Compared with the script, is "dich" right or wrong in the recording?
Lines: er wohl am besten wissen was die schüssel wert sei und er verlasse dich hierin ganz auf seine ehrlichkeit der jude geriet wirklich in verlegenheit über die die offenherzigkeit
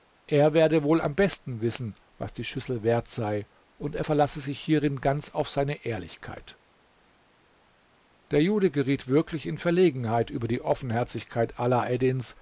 wrong